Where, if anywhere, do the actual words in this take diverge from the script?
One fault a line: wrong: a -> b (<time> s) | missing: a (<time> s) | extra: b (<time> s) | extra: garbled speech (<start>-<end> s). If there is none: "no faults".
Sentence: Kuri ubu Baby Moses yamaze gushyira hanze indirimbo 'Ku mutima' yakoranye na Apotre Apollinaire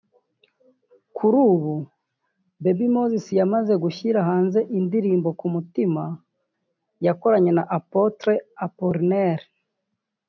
no faults